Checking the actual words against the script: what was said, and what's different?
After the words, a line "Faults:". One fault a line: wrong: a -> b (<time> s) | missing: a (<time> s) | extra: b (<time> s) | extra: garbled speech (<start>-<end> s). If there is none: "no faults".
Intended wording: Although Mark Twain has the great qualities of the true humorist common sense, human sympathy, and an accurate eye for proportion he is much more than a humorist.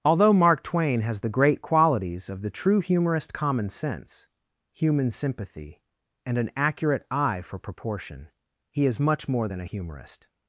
Although Mark Twain has the great qualities of the true humorist common sense, human sympathy, and an accurate eye for proportion he is much more than a humorist.
Faults:
no faults